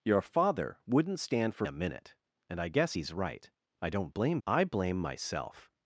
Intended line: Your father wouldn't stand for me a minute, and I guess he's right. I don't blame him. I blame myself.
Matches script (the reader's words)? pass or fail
fail